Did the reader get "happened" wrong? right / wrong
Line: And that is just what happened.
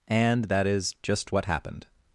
right